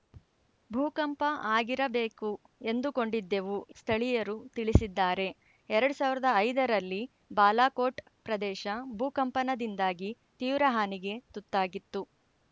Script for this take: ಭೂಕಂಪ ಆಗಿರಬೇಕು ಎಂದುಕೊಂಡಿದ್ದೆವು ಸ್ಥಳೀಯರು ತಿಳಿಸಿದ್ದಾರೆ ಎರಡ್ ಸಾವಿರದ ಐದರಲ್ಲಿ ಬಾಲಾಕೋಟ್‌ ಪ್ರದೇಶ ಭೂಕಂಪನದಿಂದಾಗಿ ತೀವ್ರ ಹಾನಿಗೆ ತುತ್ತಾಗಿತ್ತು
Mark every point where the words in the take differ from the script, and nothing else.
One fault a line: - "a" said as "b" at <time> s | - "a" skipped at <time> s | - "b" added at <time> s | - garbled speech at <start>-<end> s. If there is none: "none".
none